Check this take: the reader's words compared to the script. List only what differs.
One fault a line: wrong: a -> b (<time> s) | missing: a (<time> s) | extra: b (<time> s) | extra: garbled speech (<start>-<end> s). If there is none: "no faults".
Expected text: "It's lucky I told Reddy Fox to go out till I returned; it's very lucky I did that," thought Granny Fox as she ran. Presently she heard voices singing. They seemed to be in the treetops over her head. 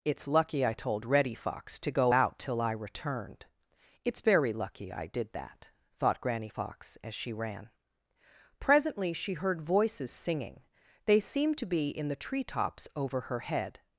no faults